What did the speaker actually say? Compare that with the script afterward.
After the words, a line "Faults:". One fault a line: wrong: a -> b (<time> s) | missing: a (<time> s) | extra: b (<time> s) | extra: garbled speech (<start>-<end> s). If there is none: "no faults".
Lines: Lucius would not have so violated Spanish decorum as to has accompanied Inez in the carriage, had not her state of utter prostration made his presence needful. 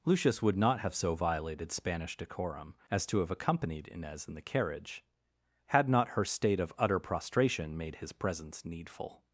Lucius would not have so violated Spanish decorum as to have accompanied Inez in the carriage, had not her state of utter prostration made his presence needful.
Faults:
wrong: has -> have (3.2 s)